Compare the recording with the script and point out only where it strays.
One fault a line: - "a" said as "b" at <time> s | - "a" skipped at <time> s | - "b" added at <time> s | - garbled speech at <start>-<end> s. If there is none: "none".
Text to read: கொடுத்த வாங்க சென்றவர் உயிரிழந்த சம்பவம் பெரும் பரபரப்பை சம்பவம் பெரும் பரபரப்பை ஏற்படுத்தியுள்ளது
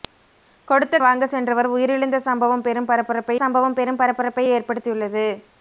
none